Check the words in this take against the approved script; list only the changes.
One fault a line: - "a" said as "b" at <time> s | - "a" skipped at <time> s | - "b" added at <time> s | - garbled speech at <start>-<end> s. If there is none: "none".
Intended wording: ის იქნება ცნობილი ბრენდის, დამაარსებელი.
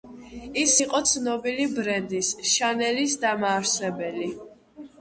- "იქნება" said as "იყო" at 0.8 s
- "შანელის" added at 2.5 s